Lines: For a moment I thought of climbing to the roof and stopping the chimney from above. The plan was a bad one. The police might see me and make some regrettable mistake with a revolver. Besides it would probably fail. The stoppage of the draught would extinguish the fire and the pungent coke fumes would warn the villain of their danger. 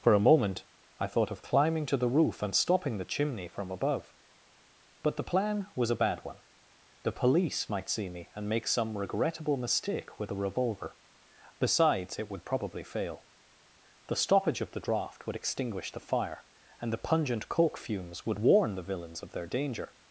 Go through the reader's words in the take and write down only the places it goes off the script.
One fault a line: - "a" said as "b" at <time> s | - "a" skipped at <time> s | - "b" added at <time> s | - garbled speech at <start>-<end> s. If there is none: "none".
- "But" added at 5.0 s
- "villain" said as "villains" at 18.8 s